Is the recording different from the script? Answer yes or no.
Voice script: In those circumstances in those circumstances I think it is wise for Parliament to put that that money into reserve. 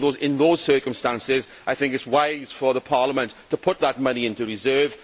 yes